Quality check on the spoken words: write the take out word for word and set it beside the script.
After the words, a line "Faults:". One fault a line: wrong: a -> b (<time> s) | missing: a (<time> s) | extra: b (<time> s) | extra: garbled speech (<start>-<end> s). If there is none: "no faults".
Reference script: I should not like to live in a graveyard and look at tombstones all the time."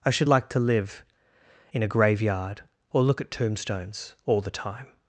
I should like to live in a graveyard or look at tombstones all the time."
Faults:
missing: not (0.3 s)
wrong: and -> or (2.9 s)